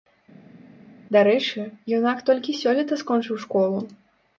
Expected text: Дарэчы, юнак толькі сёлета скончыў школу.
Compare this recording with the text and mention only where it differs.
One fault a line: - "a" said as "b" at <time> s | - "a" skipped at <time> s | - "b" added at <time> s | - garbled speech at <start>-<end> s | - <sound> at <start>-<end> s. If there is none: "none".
none